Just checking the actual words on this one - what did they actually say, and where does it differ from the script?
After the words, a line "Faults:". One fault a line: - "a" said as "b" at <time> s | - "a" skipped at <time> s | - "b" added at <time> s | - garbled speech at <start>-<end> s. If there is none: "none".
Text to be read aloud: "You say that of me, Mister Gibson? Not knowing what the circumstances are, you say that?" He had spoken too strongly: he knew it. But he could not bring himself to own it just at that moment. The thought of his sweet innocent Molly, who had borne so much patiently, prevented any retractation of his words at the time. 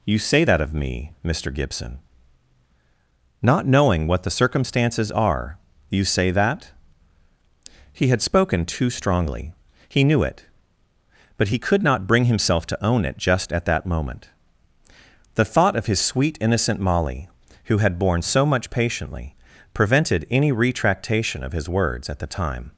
"You say that of me, Mister Gibson? Not knowing what the circumstances are, you say that?" He had spoken too strongly: he knew it. But he could not bring himself to own it just at that moment. The thought of his sweet innocent Molly, who had borne so much patiently, prevented any retractation of his words at the time.
Faults:
none